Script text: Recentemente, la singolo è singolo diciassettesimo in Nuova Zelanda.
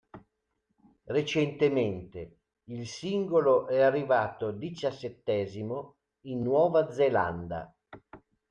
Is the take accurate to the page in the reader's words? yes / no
no